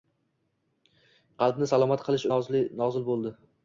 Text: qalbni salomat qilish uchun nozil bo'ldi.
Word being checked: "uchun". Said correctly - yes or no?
no